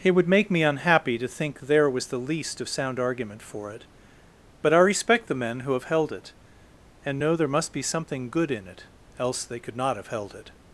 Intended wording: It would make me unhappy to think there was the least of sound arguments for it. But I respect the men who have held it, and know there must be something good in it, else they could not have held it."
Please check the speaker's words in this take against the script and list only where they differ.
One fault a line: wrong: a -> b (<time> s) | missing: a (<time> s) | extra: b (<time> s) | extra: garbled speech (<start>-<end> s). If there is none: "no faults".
wrong: arguments -> argument (3.0 s)